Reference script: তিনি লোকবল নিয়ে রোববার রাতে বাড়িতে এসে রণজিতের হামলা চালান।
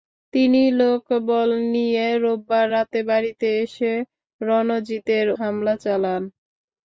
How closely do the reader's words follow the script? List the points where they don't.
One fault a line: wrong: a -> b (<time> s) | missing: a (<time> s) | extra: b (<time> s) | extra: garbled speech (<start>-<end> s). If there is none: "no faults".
no faults